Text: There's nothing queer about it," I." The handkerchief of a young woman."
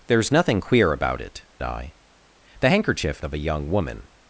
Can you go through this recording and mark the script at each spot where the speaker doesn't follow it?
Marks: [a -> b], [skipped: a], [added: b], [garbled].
There's nothing queer about it," I." The handkerchief of a young woman."